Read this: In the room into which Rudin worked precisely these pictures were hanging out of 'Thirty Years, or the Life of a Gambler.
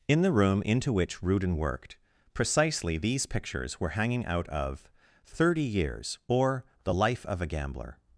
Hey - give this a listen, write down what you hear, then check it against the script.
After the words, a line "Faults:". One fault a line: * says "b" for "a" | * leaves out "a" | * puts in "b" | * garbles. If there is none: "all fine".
In the room into which Rudin worked precisely these pictures were hanging out of 'Thirty Years, or the Life of a Gambler.
Faults:
all fine